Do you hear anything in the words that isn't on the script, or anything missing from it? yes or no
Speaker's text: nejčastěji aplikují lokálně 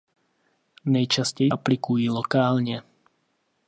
no